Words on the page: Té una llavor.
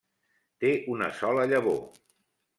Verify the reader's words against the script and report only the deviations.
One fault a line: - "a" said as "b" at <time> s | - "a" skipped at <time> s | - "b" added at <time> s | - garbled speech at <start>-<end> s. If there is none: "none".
- "sola" added at 1.2 s